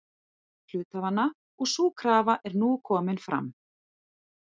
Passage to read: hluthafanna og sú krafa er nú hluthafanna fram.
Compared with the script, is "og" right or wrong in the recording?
right